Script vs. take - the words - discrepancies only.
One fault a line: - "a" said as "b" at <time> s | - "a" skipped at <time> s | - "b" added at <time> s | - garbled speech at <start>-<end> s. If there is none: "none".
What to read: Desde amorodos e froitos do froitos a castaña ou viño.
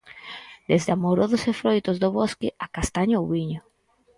- "froitos" said as "bosque" at 2.2 s